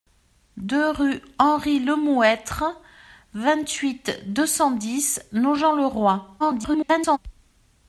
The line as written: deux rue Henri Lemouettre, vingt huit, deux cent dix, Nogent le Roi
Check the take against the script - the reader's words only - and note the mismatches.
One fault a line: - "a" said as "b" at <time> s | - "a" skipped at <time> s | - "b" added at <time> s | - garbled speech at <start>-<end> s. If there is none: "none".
- garbled speech at 6.4-7.2 s